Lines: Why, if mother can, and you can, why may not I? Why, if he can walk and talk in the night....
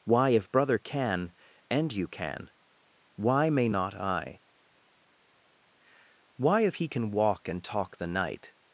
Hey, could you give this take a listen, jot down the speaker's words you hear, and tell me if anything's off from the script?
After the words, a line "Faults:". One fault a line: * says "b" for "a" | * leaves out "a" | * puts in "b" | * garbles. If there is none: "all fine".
Why, if brother can, and you can, why may not I? Why, if he can walk and talk the night....
Faults:
* says "brother" for "mother"
* leaves out "in"